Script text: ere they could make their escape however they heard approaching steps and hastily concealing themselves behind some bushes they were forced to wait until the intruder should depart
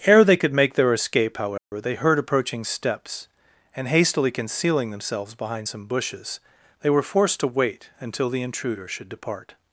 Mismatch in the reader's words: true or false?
false